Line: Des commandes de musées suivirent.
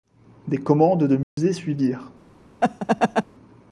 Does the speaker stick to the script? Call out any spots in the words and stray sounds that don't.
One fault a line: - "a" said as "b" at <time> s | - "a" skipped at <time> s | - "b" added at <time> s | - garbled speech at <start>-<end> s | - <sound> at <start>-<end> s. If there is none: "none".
- dropout at 1.2-1.4 s
- laugh at 2.6-3.2 s